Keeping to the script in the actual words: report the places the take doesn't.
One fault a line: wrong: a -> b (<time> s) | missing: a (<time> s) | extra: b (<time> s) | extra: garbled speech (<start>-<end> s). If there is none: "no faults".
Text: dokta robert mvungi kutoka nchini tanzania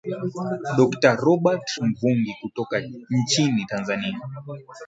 no faults